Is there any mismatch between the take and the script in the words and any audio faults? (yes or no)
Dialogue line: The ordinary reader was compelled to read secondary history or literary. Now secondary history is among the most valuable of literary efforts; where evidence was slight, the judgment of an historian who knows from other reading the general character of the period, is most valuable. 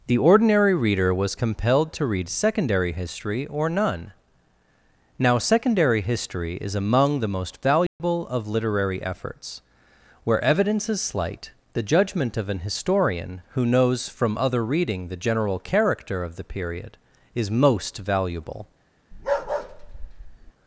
yes